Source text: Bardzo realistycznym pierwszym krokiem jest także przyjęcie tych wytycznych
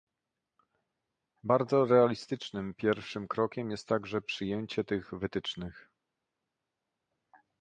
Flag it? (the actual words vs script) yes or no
no